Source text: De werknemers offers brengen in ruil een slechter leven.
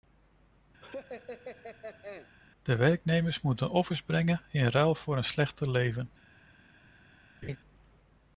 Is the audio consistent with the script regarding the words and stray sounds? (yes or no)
no